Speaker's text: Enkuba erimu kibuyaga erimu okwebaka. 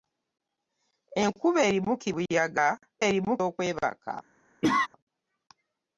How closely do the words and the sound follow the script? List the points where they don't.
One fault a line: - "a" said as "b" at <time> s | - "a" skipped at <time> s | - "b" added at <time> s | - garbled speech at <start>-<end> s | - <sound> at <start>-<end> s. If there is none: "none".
- cough at 4.6-4.9 s